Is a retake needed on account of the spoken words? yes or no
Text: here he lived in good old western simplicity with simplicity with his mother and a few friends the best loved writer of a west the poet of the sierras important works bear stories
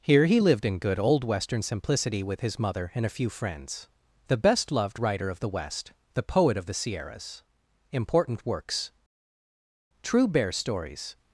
yes